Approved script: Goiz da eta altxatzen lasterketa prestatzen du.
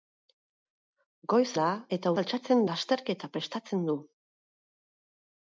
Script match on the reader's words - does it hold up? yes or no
yes